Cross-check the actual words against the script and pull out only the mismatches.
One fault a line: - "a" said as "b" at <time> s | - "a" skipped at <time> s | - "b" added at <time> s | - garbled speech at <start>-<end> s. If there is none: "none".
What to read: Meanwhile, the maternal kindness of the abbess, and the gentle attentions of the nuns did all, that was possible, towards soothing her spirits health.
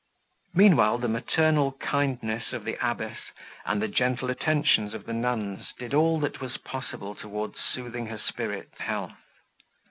none